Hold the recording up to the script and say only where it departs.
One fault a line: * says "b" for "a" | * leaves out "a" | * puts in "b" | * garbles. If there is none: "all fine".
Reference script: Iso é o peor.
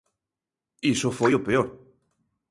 * says "foi" for "é"